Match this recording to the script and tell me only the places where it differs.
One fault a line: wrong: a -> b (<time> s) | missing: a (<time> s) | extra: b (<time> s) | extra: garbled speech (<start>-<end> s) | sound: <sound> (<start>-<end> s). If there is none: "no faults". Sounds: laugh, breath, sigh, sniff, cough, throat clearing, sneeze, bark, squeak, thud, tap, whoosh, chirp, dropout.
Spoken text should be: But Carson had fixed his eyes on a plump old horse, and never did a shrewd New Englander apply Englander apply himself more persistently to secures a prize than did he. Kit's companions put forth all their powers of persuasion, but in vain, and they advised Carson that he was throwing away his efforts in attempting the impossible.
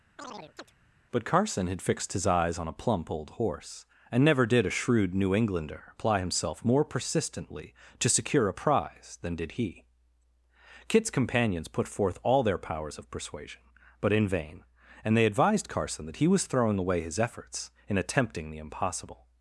sound: chirp (0.2-0.7 s)
missing: Englander apply (6.2 s)
wrong: secures -> secure (8.1 s)